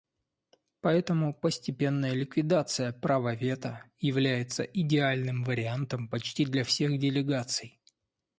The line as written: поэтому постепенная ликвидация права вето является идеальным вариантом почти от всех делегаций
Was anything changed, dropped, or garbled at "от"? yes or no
yes